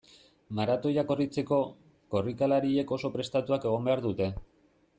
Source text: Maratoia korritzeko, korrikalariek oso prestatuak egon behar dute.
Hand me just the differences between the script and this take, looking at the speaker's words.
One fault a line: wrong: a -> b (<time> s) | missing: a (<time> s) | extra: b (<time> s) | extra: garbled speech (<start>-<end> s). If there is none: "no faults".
no faults